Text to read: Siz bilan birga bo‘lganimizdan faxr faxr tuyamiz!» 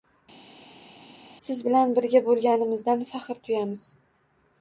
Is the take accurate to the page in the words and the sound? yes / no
no